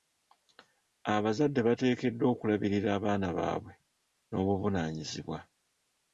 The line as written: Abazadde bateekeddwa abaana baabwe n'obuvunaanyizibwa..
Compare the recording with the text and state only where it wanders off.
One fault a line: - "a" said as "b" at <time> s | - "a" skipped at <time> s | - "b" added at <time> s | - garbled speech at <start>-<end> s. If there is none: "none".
- "okulabirira" added at 2.3 s